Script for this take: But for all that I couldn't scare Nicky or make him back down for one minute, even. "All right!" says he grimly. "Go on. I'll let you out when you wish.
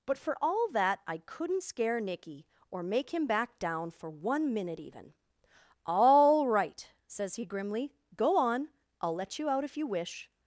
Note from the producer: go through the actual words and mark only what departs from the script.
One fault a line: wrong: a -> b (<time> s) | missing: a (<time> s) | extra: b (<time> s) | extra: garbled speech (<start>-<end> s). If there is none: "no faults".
wrong: when -> if (9.6 s)